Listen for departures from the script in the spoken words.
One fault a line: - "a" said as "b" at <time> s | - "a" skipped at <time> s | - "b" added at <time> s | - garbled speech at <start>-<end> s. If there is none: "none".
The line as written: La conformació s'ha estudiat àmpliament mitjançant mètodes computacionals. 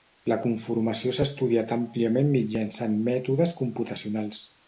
none